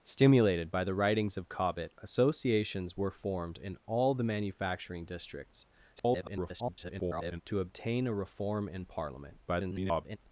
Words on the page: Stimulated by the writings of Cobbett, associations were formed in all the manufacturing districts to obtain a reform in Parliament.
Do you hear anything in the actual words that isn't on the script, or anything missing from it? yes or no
yes